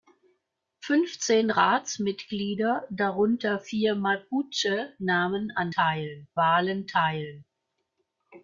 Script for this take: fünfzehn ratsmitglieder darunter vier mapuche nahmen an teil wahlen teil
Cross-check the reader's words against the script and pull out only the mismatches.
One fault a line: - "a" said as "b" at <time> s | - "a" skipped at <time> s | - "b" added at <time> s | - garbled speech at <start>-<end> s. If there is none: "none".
none